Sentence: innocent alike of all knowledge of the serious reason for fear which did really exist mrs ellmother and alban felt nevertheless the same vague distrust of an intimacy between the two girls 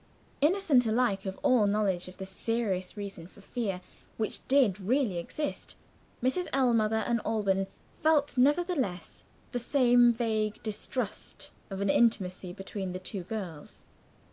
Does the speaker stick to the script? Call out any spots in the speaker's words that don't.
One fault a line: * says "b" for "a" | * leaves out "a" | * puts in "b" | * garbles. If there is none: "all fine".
all fine